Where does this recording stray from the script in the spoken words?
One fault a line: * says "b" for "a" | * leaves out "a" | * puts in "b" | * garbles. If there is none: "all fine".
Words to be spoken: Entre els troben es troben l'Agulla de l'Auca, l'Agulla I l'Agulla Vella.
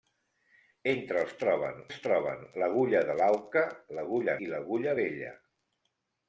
all fine